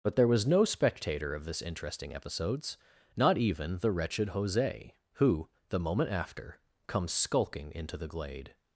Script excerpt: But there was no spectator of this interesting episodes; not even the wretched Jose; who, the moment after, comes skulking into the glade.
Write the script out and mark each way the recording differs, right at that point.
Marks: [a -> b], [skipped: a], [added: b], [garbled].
But there was no spectator of this interesting episodes; not even the wretched Jose; who, the moment after, comes skulking into the glade.